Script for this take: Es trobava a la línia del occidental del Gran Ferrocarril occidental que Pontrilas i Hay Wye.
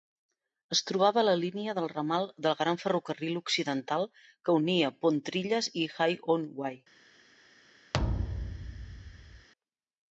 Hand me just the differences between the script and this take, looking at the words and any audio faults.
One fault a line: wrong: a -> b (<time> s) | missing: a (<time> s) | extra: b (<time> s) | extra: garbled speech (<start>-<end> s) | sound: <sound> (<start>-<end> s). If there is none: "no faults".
wrong: occidental -> ramal (1.9 s)
extra: unia (4.6 s)
extra: on (6.3 s)
sound: thud (7.9-9.5 s)